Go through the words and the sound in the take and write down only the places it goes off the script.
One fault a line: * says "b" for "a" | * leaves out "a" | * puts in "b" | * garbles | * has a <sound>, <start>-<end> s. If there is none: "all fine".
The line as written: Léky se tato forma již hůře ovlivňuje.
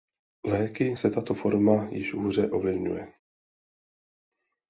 all fine